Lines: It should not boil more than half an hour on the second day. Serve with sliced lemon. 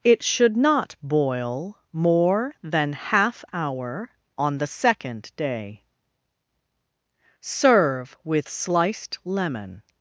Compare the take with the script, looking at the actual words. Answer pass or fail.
fail